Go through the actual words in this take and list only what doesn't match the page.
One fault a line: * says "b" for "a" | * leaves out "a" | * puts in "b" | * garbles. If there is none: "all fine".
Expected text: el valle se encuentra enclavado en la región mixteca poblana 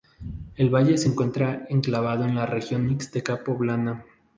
all fine